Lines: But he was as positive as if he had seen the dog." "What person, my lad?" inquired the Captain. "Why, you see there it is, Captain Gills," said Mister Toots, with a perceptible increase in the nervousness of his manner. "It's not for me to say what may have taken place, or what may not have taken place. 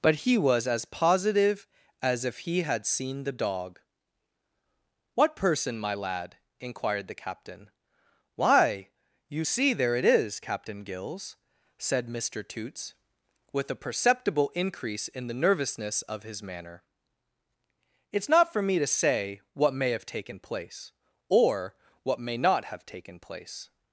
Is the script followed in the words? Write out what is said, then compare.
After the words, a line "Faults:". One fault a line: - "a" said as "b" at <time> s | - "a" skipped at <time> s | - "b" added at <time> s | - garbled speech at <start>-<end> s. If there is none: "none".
But he was as positive as if he had seen the dog." "What person, my lad?" inquired the Captain. "Why, you see there it is, Captain Gills," said Mister Toots, with a perceptible increase in the nervousness of his manner. "It's not for me to say what may have taken place, or what may not have taken place.
Faults:
none